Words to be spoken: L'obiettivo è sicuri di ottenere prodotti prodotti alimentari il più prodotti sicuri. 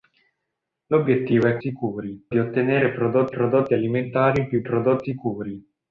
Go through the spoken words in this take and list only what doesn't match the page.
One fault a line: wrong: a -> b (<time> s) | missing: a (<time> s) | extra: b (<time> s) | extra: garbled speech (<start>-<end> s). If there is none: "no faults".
no faults